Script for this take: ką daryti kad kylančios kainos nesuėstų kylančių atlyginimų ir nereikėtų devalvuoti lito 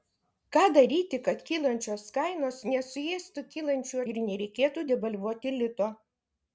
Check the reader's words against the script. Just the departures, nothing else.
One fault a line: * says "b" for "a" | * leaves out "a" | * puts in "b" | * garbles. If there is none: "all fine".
* leaves out "atlyginimų"